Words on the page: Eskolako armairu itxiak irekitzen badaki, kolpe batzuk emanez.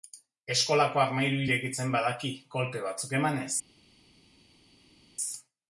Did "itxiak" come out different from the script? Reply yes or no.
yes